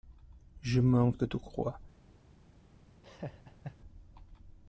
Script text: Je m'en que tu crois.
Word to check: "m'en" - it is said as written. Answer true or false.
true